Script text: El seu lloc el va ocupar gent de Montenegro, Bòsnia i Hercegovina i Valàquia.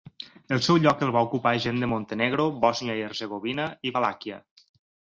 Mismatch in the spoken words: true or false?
false